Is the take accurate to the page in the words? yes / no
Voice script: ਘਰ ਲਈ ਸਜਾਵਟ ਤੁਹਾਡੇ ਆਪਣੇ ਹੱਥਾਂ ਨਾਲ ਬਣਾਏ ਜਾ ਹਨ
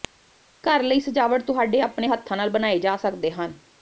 no